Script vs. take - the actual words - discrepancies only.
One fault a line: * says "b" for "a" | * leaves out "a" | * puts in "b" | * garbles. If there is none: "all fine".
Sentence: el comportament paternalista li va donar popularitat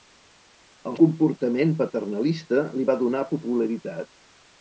all fine